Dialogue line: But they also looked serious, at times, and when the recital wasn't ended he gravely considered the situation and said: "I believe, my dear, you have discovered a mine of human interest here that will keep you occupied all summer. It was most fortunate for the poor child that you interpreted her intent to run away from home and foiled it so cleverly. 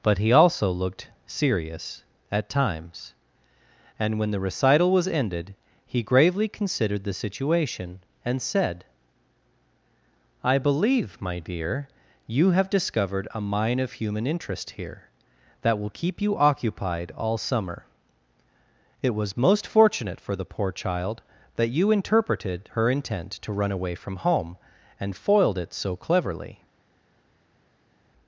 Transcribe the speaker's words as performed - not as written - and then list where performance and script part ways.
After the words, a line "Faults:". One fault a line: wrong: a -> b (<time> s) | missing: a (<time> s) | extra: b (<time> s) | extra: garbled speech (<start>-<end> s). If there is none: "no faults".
But he also looked serious, at times, and when the recital was ended he gravely considered the situation and said: "I believe, my dear, you have discovered a mine of human interest here that will keep you occupied all summer. It was most fortunate for the poor child that you interpreted her intent to run away from home and foiled it so cleverly.
Faults:
wrong: they -> he (0.2 s)
wrong: wasn't -> was (4.9 s)